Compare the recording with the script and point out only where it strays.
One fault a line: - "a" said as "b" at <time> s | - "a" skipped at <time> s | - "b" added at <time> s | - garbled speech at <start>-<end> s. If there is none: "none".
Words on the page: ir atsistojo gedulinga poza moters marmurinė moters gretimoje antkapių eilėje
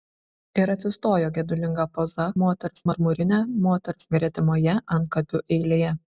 none